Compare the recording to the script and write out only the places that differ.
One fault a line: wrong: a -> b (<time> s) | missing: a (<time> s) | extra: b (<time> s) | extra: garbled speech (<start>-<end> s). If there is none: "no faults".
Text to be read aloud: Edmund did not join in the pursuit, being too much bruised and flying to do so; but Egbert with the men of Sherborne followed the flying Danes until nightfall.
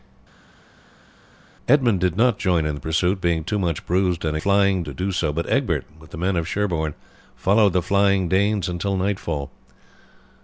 no faults